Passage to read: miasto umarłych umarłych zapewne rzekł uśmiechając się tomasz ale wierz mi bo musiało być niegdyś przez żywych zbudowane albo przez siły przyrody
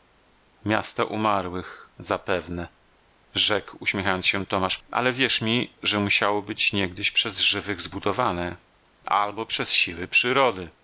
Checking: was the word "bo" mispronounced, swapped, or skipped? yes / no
yes